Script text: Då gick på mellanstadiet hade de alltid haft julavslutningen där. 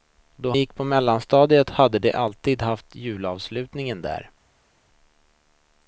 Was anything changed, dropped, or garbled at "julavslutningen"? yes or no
no